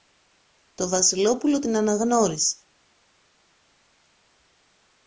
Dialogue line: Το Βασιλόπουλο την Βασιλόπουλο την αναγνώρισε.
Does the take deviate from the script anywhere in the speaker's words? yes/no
yes